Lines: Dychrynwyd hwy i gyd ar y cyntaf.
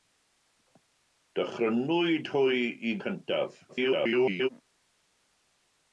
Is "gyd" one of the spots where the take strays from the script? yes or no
yes